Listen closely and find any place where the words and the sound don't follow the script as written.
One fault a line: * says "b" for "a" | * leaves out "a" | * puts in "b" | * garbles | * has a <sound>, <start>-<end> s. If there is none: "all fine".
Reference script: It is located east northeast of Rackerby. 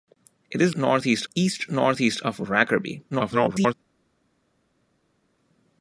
* says "northeast" for "located"
* garbles